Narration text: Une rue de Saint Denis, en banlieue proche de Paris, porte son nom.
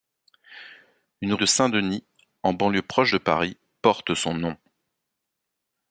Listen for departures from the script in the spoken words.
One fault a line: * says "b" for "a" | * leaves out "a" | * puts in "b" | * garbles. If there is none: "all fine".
* leaves out "rue"